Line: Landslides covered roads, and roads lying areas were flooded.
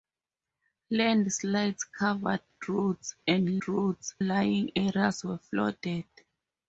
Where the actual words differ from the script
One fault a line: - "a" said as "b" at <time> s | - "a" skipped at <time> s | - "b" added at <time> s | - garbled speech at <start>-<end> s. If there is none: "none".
none